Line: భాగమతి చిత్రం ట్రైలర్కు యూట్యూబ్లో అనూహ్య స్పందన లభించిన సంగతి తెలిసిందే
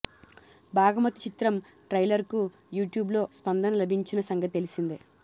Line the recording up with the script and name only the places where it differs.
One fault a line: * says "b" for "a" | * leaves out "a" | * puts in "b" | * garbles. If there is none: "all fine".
* leaves out "అనూహ్య"